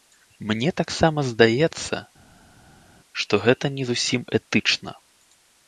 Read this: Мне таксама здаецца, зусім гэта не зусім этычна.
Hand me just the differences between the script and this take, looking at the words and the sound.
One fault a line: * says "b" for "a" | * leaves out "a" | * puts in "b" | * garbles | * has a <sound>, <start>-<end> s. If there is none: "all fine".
* says "што" for "зусім"